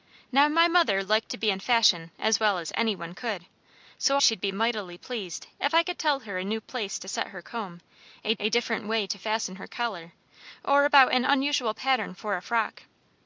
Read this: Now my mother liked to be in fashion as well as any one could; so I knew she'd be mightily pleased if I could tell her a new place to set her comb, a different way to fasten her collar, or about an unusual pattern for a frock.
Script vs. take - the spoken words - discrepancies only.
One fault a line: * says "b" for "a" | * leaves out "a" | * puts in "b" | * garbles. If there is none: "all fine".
* leaves out "I knew"
* puts in "a"